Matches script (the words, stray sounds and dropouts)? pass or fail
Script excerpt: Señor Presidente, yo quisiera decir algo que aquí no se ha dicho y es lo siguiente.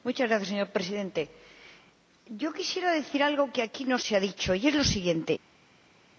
pass